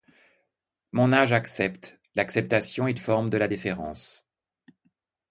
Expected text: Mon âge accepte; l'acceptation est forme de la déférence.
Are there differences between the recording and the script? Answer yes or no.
no